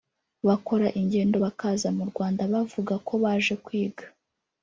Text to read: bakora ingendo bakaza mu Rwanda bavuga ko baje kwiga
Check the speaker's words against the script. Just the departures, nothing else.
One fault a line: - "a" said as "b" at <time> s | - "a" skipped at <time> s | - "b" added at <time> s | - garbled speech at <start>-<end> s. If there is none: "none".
none